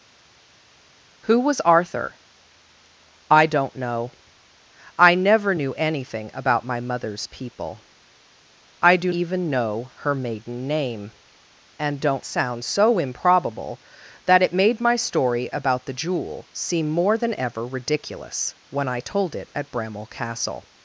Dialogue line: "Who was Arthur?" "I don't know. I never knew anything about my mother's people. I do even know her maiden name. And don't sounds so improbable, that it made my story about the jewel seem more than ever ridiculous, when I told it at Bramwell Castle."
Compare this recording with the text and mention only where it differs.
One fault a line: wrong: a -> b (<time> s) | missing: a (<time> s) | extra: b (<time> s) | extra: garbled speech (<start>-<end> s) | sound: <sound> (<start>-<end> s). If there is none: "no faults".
no faults